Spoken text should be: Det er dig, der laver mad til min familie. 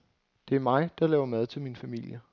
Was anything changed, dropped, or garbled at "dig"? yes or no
yes